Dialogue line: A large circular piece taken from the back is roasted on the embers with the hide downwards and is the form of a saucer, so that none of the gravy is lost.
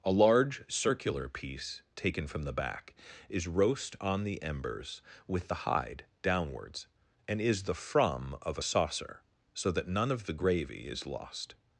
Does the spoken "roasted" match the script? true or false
false